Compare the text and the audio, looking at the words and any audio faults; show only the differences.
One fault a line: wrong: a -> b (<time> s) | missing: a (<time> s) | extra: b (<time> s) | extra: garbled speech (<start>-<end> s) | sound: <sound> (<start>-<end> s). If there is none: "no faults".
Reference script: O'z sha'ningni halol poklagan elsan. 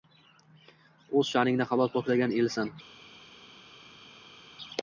no faults